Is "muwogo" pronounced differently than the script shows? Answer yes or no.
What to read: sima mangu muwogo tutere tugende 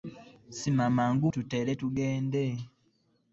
yes